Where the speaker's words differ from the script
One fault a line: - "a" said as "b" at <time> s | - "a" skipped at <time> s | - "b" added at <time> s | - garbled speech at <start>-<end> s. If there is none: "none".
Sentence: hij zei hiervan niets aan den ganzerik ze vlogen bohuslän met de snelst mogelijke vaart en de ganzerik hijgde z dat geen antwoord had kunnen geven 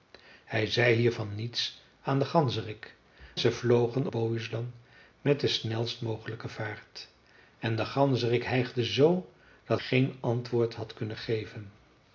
none